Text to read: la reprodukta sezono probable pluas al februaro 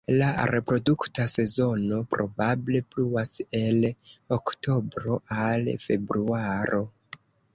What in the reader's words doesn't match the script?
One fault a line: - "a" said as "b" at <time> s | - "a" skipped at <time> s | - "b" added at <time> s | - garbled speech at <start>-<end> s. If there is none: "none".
- "el oktobro" added at 3.6 s